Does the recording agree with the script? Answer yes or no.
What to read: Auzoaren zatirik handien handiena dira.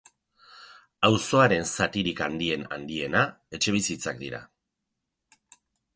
no